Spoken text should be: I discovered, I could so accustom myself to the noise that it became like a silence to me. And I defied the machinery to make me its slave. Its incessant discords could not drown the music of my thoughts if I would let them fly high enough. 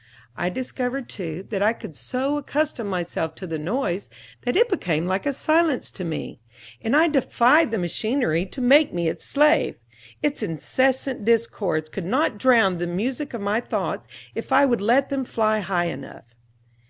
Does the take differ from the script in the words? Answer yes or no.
yes